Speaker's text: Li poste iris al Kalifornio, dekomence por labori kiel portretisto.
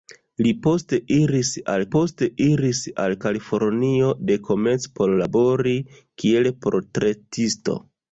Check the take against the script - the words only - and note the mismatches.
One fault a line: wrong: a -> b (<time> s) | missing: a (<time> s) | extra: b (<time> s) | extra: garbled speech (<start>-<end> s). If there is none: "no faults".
extra: poste iris al (2.0 s)